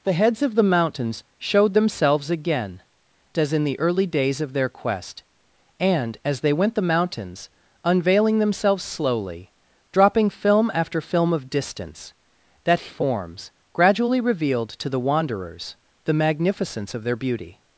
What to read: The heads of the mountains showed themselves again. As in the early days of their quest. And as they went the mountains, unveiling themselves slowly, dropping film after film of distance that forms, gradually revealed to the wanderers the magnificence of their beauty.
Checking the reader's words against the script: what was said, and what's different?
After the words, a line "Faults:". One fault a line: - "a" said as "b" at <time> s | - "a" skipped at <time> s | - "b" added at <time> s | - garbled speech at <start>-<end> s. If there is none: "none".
The heads of the mountains showed themselves again. As in the early days of their quest. And as they went the mountains, unveiling themselves slowly, dropping film after film of distance that forms, gradually revealed to the wanderers the magnificence of their beauty.
Faults:
none